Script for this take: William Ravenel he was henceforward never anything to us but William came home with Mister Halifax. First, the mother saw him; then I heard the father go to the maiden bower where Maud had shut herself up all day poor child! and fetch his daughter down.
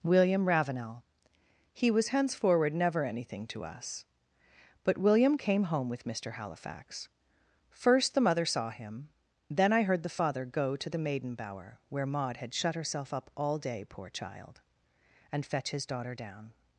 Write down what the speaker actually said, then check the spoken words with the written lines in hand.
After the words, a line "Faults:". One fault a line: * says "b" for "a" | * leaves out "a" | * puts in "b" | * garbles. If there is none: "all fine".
William Ravenel he was henceforward never anything to us but William came home with Mister Halifax. First, the mother saw him; then I heard the father go to the maiden bower where Maud had shut herself up all day poor child! and fetch his daughter down.
Faults:
all fine